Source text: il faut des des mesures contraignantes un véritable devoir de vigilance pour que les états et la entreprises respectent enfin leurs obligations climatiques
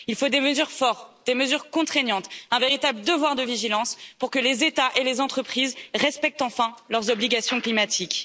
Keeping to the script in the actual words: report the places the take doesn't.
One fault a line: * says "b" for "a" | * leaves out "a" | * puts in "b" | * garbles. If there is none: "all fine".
* puts in "mesures fortes"
* says "les" for "la"